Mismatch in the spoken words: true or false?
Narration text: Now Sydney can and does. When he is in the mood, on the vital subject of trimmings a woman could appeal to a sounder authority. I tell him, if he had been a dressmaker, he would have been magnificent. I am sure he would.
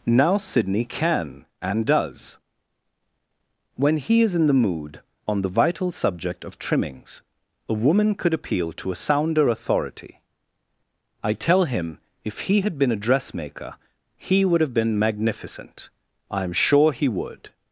false